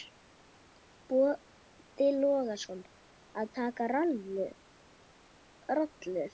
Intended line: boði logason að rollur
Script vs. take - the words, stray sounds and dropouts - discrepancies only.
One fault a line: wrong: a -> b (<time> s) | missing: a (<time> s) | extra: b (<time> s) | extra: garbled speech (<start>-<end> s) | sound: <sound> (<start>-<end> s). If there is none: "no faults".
extra: taka (3.6 s)